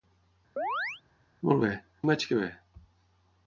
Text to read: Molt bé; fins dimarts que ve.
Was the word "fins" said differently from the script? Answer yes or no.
yes